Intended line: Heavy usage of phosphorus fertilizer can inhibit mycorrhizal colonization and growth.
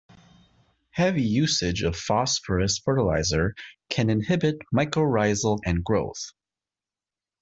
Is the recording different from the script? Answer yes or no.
yes